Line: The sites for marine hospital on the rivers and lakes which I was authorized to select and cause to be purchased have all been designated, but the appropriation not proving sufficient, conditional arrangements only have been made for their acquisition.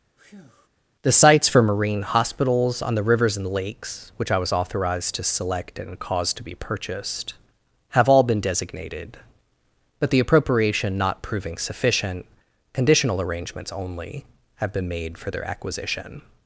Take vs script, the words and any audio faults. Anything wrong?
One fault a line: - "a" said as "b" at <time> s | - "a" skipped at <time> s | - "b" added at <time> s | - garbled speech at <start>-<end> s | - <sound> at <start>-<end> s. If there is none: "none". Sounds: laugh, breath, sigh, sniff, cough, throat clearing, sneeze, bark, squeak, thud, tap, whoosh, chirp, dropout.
- breath at 0.2-0.7 s
- "hospital" said as "hospitals" at 2.0 s